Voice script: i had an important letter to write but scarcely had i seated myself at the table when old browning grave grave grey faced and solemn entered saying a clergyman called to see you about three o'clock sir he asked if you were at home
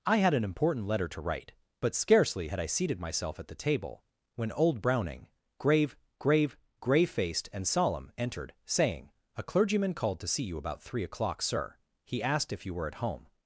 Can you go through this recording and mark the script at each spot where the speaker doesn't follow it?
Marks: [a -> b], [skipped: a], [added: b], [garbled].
i had an important letter to write but scarcely had i seated myself at the table when old browning grave grave grey faced and solemn entered saying a clergyman called to see you about three o'clock sir he asked if you were at home